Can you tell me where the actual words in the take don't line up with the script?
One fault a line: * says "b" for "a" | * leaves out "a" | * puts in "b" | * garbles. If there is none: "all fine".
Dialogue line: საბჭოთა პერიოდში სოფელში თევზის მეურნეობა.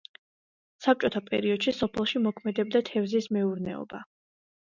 * puts in "მოქმედებდა"